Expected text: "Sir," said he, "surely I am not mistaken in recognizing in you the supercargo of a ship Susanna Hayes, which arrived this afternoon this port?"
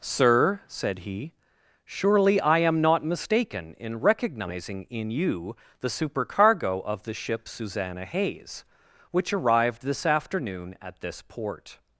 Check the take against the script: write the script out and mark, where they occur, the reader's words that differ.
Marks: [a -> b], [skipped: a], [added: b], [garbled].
"Sir," said he, "surely I am not mistaken in recognizing in you the supercargo of [a -> the] ship Susanna Hayes, which arrived this afternoon [added: at] this port?"